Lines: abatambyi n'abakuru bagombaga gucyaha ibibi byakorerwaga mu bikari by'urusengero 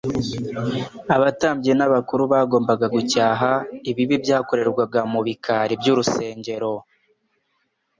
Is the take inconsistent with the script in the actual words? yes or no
no